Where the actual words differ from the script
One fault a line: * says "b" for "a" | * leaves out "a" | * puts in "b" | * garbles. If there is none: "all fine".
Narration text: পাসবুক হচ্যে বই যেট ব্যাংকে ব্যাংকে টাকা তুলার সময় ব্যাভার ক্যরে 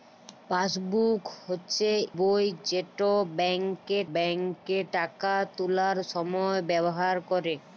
all fine